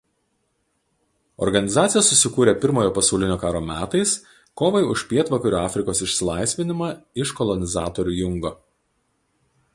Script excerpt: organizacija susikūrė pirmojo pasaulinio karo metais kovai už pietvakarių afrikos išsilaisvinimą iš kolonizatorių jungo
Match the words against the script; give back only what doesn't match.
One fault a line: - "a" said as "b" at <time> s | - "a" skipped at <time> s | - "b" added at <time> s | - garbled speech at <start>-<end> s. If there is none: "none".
none